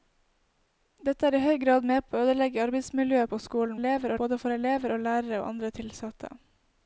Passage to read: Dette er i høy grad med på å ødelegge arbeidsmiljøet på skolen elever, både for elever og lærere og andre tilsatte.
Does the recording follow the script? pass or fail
pass